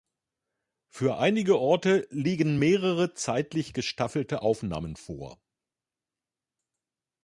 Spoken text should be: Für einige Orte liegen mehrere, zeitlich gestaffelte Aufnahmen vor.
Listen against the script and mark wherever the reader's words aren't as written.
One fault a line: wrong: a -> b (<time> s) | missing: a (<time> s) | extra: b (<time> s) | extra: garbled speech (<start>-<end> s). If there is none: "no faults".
no faults